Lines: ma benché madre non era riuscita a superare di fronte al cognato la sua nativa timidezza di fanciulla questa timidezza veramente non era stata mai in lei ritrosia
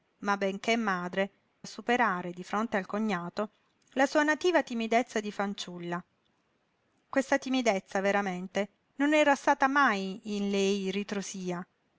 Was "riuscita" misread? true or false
true